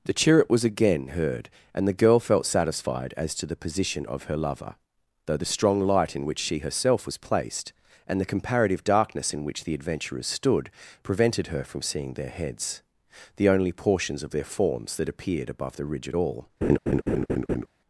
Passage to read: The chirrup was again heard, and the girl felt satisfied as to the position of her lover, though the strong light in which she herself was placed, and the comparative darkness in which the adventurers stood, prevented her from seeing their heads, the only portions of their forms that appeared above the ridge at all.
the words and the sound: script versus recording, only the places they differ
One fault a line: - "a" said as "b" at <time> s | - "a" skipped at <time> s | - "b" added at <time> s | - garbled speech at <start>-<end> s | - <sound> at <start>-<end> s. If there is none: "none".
- laugh at 16.6-17.7 s